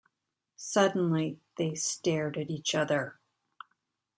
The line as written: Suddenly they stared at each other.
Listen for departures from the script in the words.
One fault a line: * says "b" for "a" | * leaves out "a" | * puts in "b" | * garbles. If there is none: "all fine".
all fine